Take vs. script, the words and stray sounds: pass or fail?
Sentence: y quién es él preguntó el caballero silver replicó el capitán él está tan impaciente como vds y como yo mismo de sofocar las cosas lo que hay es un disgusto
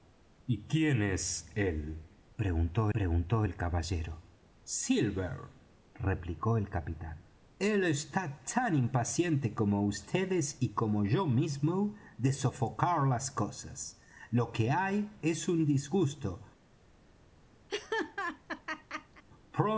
fail